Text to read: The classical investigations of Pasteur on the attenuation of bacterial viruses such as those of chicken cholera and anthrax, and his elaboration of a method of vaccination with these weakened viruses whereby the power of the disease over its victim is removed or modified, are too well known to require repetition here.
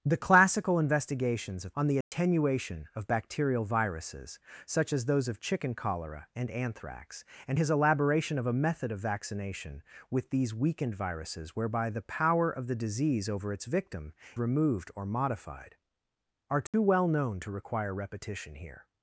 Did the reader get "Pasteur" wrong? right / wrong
wrong